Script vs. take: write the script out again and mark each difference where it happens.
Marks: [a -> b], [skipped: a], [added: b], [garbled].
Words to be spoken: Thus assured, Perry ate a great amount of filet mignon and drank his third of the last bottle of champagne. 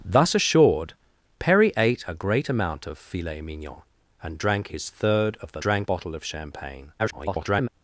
Thus assured, Perry ate a great amount of filet mignon and drank his third of the [last -> drank] bottle of champagne. [garbled]